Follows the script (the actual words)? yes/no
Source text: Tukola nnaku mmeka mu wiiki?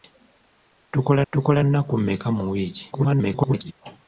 no